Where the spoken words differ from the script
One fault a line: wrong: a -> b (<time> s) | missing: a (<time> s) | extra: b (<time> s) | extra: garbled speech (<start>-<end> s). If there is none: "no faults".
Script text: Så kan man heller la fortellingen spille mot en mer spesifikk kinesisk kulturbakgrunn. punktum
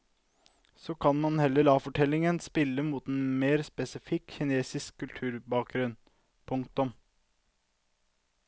no faults